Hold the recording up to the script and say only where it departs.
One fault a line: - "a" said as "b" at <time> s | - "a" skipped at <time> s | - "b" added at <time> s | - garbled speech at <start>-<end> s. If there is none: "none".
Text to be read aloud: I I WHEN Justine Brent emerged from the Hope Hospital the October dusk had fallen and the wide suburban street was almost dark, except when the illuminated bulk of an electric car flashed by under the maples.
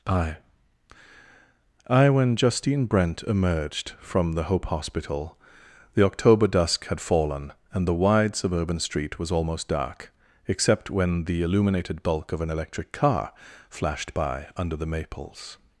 none